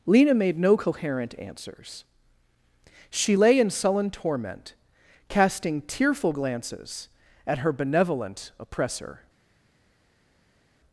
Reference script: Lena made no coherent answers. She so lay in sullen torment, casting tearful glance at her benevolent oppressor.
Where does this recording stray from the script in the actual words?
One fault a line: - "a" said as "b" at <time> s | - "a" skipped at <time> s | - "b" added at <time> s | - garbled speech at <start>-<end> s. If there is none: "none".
- "so" skipped at 3.4 s
- "glance" said as "glances" at 6.3 s